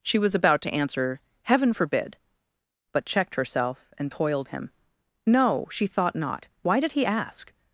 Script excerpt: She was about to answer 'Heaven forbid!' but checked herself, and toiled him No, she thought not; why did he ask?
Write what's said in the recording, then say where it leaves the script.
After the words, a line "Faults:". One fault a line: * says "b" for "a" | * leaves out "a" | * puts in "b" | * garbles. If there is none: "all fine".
She was about to answer 'Heaven forbid!' but checked herself, and toiled him No, she thought not; why did he ask?
Faults:
all fine